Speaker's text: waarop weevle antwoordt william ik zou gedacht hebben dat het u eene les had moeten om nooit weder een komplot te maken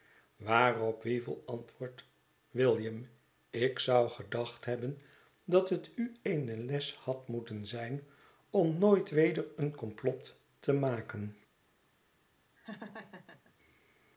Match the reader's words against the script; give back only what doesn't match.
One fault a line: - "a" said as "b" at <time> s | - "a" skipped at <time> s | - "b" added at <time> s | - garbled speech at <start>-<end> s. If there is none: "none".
- "zijn" added at 7.7 s